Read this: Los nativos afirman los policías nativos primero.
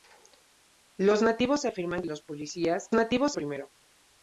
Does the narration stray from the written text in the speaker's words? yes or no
no